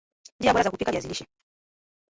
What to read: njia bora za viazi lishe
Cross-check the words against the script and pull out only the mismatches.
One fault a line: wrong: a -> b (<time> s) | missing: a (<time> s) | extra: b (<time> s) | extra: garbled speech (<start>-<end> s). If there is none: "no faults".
extra: kupika (0.7 s)